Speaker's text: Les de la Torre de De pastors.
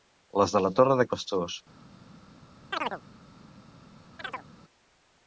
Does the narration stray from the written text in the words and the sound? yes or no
yes